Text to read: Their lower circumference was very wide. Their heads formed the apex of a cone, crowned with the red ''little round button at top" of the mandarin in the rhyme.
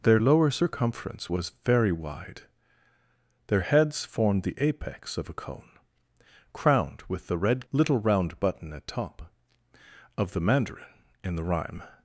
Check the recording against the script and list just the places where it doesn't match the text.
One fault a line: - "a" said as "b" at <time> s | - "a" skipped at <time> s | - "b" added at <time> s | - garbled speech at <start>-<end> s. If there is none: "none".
none